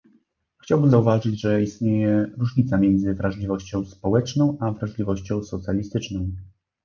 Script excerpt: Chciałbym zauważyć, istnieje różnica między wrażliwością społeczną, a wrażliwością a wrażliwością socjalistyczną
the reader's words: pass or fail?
fail